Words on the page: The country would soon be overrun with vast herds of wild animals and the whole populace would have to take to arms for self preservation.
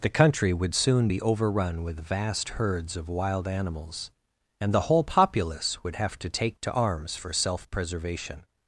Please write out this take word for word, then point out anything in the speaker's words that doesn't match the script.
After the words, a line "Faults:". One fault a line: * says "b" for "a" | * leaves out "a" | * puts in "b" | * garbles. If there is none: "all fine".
The country would soon be overrun with vast herds of wild animals and the whole populace would have to take to arms for self preservation.
Faults:
all fine